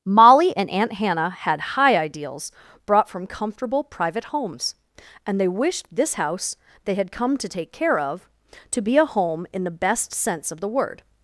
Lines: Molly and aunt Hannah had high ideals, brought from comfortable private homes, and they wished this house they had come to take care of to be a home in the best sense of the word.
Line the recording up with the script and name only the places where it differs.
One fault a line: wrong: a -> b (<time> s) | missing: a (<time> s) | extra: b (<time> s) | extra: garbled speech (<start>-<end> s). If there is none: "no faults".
no faults